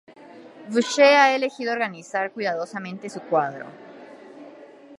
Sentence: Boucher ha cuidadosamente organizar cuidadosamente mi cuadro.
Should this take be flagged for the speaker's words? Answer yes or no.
yes